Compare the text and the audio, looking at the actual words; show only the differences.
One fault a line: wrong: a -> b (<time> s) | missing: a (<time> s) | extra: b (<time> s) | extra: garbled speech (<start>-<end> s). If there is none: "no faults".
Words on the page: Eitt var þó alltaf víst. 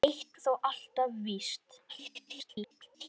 missing: var (0.4 s)
extra: garbled speech (1.9-3.1 s)